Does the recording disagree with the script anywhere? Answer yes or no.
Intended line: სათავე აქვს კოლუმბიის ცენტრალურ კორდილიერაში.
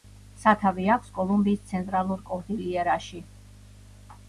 no